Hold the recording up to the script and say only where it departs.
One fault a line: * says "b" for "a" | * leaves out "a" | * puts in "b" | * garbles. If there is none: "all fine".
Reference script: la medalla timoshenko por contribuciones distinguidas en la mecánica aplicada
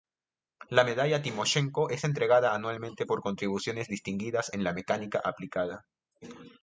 * puts in "es entregada anualmente"